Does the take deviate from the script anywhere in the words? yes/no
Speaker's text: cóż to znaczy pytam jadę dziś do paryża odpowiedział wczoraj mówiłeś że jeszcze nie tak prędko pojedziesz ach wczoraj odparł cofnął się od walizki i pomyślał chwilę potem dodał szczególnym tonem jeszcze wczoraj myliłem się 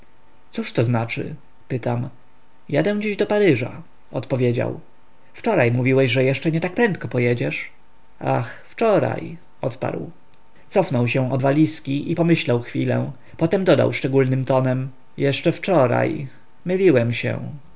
no